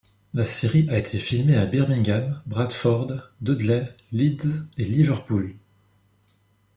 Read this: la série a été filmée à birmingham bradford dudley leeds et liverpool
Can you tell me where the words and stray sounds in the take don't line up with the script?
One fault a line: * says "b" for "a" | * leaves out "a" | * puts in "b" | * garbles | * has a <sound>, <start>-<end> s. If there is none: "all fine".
all fine